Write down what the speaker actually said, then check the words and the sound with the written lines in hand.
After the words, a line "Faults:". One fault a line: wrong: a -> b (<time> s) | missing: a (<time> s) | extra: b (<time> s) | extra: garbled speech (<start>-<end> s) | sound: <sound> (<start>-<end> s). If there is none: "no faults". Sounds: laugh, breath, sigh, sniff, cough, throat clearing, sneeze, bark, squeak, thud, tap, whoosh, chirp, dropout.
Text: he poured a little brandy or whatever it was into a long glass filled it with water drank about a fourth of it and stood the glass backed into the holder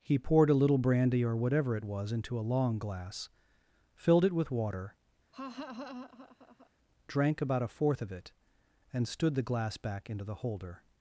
he poured a little brandy or whatever it was into a long glass filled it with water drank about a fourth of it and stood the glass back into the holder
Faults:
sound: laugh (5.3-6.7 s)
wrong: backed -> back (9.8 s)